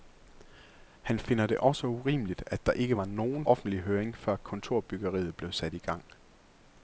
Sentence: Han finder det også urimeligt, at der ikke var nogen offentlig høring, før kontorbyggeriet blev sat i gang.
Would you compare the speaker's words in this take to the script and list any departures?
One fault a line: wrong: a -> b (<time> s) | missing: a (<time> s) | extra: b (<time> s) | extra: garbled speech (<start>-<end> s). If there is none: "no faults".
no faults